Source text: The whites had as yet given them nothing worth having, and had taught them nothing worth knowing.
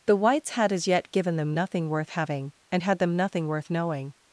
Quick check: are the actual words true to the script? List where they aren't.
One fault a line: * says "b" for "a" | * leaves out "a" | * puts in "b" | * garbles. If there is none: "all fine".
* leaves out "taught"